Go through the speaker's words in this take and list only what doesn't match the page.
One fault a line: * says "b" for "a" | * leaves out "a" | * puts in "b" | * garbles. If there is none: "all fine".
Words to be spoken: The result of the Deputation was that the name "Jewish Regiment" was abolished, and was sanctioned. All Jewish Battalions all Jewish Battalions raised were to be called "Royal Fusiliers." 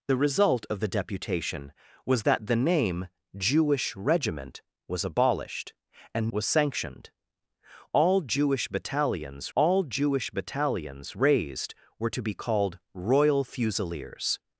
all fine